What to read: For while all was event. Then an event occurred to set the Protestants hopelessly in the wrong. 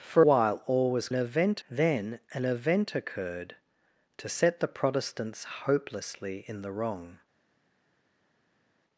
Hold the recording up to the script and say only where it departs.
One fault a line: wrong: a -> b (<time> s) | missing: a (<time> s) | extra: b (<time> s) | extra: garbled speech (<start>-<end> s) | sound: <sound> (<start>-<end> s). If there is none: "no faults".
no faults